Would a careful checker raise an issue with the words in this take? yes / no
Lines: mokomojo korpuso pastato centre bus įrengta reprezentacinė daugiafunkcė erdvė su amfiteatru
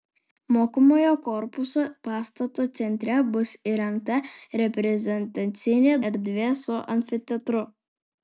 yes